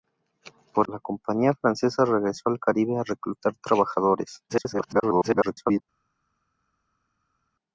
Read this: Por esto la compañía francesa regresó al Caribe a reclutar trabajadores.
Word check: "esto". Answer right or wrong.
wrong